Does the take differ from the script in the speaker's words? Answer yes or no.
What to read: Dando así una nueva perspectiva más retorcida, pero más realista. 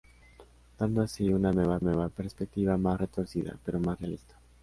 yes